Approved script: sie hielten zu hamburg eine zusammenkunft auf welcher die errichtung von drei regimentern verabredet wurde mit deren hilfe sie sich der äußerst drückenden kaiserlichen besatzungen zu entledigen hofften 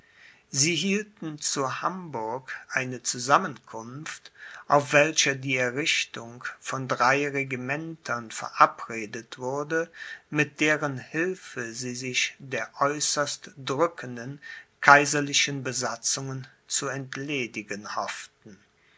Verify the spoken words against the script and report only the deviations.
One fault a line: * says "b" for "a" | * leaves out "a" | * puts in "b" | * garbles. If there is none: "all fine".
all fine